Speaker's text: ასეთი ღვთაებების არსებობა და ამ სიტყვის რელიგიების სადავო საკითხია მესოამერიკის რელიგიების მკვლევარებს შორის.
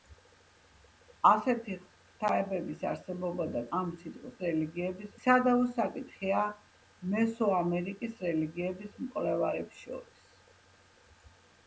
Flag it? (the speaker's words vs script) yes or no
no